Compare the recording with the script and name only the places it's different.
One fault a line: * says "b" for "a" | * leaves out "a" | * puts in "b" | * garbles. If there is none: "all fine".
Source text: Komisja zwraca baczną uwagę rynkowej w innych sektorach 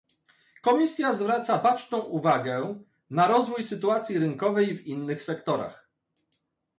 * puts in "na rozwój sytuacji"